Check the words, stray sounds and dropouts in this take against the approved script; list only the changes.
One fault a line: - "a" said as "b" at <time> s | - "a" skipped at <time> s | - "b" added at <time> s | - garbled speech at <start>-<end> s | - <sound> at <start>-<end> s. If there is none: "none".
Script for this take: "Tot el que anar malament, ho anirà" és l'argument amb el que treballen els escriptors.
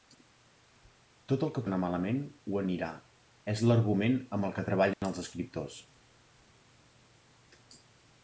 - dropout at 4.9-5.0 s